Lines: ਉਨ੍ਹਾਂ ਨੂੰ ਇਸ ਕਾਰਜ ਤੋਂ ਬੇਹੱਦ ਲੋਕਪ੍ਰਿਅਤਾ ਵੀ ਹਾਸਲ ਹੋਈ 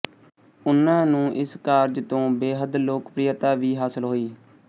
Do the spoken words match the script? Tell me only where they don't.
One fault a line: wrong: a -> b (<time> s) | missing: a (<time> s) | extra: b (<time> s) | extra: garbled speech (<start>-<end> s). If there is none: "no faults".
no faults